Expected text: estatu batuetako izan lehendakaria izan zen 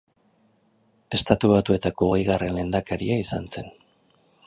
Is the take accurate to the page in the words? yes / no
no